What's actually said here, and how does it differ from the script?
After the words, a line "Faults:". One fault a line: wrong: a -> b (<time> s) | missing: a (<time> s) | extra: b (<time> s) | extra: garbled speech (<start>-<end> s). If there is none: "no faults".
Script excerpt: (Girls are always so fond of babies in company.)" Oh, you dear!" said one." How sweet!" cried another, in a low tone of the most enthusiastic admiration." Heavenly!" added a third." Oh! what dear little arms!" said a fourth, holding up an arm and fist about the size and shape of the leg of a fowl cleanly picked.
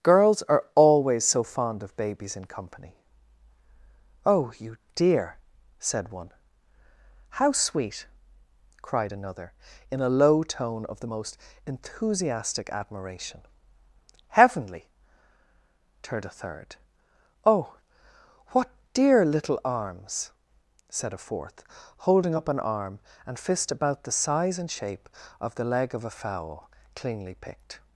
(Girls are always so fond of babies in company.)" Oh, you dear!" said one." How sweet!" cried another, in a low tone of the most enthusiastic admiration." Heavenly!" turned a third." Oh! what dear little arms!" said a fourth, holding up an arm and fist about the size and shape of the leg of a fowl cleanly picked.
Faults:
wrong: added -> turned (16.0 s)